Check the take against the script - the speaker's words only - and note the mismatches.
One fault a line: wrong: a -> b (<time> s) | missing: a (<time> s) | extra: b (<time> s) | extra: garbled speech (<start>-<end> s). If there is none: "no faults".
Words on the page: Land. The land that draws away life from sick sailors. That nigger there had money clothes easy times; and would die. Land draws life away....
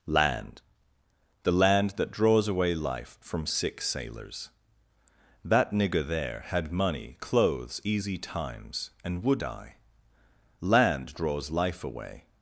no faults